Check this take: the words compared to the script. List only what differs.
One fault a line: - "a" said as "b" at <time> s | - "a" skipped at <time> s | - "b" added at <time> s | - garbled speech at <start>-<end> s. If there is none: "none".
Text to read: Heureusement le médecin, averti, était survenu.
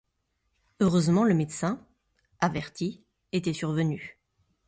none